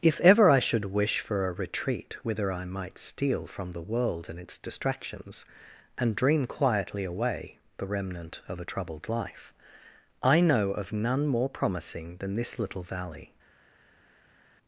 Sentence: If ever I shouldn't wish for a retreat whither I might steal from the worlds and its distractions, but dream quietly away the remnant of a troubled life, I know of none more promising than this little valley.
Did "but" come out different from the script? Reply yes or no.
yes